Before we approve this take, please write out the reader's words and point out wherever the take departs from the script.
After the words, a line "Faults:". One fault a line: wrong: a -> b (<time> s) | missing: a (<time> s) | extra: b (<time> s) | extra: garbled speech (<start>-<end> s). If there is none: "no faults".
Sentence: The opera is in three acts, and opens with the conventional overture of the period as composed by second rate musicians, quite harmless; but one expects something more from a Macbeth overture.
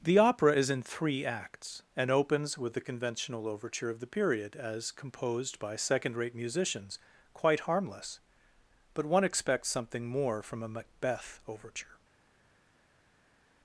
The opera is in three acts, and opens with the conventional overture of the period as composed by second rate musicians, quite harmless; but one expects something more from a Macbeth overture.
Faults:
no faults